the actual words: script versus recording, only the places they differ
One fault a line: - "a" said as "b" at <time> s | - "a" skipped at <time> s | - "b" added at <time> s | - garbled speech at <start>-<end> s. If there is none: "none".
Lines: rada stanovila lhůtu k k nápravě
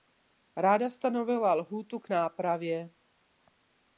- "k" skipped at 2.1 s